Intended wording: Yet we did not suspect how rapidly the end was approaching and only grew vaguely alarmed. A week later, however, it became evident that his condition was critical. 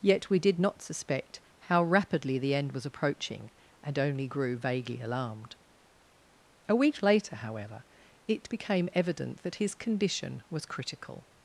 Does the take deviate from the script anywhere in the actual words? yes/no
no